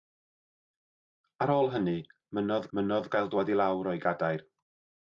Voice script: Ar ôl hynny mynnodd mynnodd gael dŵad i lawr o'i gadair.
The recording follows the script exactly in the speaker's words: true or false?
true